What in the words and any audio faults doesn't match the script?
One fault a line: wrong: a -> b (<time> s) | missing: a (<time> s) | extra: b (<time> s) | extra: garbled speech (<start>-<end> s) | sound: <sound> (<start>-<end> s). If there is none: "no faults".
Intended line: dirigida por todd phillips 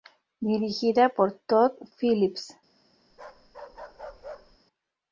sound: bark (3.1-4.6 s)